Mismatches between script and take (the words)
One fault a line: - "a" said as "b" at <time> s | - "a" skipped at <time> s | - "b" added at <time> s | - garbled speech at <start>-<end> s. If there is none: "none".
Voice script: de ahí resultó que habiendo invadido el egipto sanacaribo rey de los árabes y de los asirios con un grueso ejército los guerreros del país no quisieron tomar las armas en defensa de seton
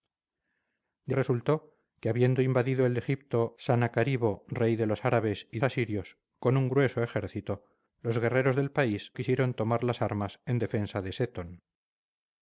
- "ahí" skipped at 1.1 s
- "de los" skipped at 5.6 s
- "no" skipped at 9.1 s